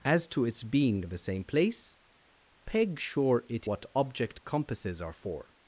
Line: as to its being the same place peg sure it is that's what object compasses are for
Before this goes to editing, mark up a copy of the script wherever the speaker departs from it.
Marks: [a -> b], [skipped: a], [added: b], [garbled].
as to its being the same place peg sure it [skipped: is that's] what object compasses are for